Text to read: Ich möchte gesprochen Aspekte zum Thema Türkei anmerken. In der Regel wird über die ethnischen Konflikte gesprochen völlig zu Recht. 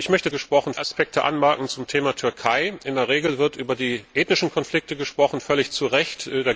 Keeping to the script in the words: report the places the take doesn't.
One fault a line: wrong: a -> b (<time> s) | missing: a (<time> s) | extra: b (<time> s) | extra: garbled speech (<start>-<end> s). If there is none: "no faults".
no faults